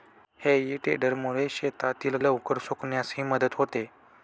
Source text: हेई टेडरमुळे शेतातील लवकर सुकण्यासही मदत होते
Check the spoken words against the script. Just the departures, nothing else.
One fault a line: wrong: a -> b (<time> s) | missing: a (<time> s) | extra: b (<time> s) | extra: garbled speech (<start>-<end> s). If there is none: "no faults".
no faults